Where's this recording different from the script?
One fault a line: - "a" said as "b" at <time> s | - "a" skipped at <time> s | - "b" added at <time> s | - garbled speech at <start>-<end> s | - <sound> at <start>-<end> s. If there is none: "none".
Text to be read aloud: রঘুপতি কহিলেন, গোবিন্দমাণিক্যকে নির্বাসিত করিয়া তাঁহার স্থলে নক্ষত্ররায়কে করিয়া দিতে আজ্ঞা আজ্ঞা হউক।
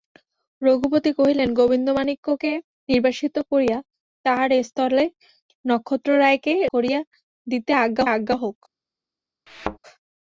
- thud at 9.5-9.8 s